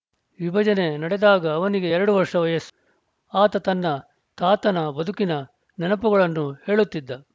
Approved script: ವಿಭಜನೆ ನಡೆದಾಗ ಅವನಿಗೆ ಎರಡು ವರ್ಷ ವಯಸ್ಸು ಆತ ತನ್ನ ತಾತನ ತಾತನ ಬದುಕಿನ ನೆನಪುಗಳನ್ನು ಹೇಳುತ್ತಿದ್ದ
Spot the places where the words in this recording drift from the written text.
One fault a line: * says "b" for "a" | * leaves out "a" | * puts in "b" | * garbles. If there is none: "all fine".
* leaves out "ತಾತನ"